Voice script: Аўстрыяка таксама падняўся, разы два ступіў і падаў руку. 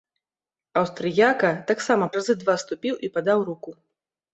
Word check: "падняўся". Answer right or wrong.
wrong